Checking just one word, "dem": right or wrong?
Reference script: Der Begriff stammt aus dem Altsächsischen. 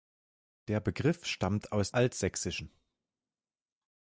wrong